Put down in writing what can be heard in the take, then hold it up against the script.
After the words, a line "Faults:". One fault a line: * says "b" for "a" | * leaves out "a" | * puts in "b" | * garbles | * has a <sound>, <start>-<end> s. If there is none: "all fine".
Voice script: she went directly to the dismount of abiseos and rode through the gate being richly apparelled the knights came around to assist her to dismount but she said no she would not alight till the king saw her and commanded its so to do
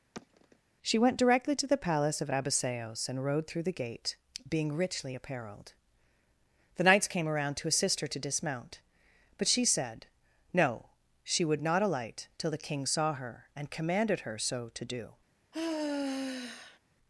she went directly to the palace of abiseos and rode through the gate being richly apparelled the knights came around to assist her to dismount but she said no she would not alight till the king saw her and commanded her so to do
Faults:
* has a sigh, 0.1-0.6 s
* says "palace" for "dismount"
* says "her" for "its"
* has a sigh, 15.5-16.8 s